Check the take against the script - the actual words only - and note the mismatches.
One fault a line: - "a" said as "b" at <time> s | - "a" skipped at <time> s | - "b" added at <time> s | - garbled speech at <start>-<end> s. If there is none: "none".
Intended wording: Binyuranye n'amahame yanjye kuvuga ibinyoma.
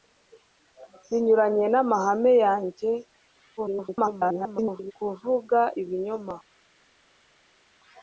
- garbled speech at 3.6-4.9 s